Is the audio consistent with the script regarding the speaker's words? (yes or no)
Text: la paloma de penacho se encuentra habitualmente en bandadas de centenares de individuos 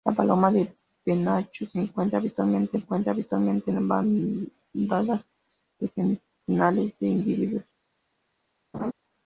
no